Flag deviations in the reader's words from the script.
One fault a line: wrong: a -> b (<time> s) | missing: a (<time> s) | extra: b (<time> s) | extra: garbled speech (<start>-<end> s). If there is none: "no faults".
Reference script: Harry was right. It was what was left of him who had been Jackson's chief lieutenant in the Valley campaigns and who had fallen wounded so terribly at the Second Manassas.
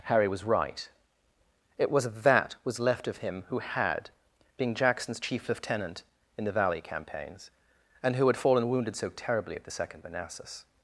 wrong: what -> that (2.1 s)
wrong: been -> being (4.6 s)